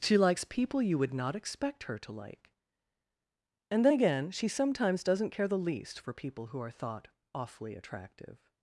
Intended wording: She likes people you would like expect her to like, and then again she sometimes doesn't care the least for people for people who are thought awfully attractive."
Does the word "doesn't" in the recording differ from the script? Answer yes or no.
no